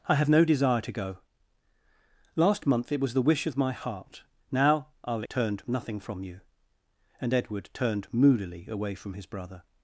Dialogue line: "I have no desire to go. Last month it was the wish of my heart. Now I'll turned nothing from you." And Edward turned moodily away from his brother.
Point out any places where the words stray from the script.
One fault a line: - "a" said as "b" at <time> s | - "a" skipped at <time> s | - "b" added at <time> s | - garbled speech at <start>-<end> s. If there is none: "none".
none